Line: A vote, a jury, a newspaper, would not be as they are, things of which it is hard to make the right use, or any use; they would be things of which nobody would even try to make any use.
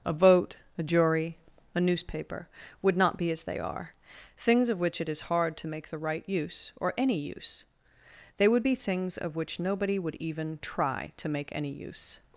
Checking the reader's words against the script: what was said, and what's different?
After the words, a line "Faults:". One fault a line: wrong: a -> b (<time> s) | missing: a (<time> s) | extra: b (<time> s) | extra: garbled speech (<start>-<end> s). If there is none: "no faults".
A vote, a jury, a newspaper, would not be as they are, things of which it is hard to make the right use, or any use; they would be things of which nobody would even try to make any use.
Faults:
no faults